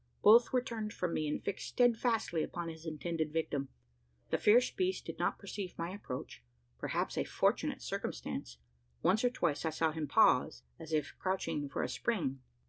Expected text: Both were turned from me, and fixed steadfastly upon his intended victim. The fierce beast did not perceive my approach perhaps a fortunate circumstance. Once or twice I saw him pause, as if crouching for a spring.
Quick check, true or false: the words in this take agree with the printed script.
true